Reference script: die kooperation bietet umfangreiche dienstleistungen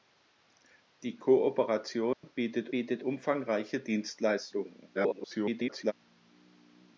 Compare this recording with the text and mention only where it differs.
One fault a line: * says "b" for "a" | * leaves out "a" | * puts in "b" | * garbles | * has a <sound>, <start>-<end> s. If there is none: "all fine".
* has a dropout, 2.1-2.2 s
* puts in "bietet"
* garbles